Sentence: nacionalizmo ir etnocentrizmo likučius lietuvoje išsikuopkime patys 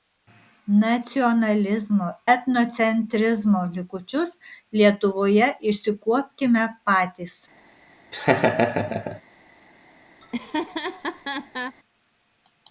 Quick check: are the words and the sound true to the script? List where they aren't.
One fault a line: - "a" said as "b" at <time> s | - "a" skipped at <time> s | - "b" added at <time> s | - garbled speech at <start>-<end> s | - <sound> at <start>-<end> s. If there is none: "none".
- "ir" skipped at 2.1 s
- laugh at 8.1-9.2 s
- laugh at 10.2-11.8 s